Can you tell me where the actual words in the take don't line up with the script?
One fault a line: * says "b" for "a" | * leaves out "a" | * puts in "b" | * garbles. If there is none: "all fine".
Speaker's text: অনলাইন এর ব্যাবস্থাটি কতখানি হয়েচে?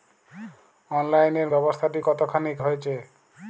all fine